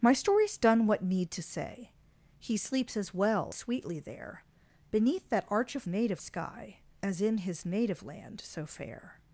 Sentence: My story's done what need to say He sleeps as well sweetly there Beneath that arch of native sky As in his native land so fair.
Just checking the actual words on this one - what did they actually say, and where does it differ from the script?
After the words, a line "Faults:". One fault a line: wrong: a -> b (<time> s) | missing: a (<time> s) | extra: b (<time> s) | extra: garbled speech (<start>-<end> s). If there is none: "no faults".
My story's done what need to say He sleeps as well sweetly there Beneath that arch of native sky As in his native land so fair.
Faults:
no faults